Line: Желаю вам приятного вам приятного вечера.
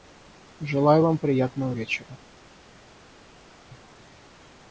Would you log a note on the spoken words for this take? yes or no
yes